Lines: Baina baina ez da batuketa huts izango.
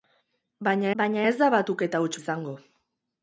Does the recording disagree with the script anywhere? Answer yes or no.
no